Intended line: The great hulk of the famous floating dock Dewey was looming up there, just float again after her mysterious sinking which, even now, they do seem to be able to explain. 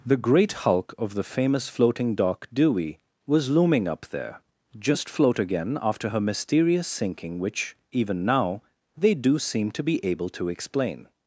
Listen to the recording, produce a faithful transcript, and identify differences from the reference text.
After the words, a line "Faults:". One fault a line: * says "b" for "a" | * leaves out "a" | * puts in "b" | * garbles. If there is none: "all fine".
The great hulk of the famous floating dock Dewey was looming up there, just float again after her mysterious sinking which, even now, they do seem to be able to explain.
Faults:
all fine